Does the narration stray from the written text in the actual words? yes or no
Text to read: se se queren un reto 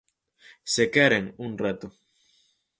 yes